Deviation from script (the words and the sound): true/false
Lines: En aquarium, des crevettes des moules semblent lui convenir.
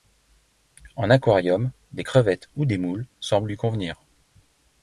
true